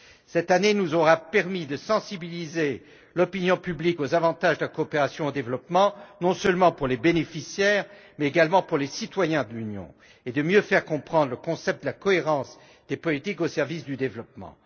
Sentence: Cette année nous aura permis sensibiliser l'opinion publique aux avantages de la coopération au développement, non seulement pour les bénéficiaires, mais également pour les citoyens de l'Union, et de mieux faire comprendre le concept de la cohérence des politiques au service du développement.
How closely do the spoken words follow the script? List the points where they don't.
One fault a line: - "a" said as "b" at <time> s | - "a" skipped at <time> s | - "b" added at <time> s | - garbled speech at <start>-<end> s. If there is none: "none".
- "de" added at 1.6 s